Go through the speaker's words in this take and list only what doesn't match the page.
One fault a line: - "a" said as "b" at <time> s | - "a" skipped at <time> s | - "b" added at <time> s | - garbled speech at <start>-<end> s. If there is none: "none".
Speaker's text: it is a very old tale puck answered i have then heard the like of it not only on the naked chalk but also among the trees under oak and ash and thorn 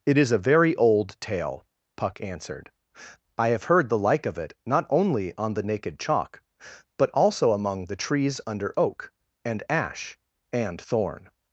- "then" skipped at 3.6 s